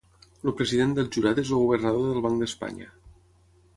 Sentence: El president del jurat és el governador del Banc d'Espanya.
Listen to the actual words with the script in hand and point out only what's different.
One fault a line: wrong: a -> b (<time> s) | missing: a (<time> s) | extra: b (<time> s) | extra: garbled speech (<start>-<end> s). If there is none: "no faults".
no faults